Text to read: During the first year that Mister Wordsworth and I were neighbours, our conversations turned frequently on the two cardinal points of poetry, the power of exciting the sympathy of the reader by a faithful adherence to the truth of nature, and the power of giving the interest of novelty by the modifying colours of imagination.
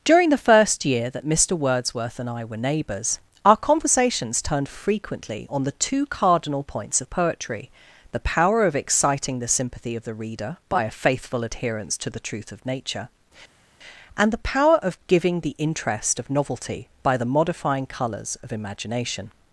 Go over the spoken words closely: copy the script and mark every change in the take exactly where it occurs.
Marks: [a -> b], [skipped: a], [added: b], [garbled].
During the first year that Mister Wordsworth and I were neighbours, our conversations turned frequently on the two cardinal points of poetry, the power of exciting the sympathy of the reader by a faithful adherence to the truth of nature, and the power of giving the interest of novelty by the modifying colours of imagination.